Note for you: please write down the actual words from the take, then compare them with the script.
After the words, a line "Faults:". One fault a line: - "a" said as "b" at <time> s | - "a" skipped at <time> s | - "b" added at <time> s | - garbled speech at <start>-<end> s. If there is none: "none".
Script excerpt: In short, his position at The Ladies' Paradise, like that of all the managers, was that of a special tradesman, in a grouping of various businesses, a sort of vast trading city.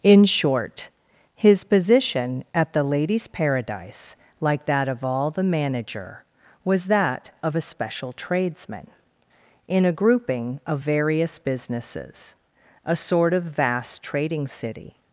In short, his position at The Ladies' Paradise, like that of all the manager, was that of a special tradesman, in a grouping of various businesses, a sort of vast trading city.
Faults:
- "managers" said as "manager" at 5.4 s